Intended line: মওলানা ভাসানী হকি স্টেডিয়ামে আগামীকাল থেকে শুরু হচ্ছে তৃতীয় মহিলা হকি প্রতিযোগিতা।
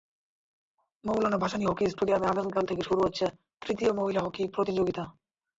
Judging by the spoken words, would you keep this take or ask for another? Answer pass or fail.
pass